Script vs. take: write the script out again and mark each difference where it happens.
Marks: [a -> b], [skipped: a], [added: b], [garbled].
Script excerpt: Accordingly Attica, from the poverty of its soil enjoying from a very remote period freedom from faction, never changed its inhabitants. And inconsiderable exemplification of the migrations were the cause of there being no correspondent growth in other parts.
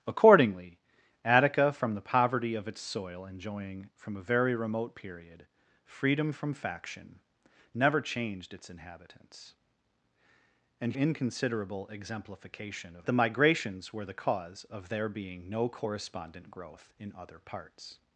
Accordingly Attica, from the poverty of its soil enjoying from a very remote period freedom from faction, never changed its inhabitants. And inconsiderable exemplification of the migrations were the cause of there being no correspondent growth in other parts.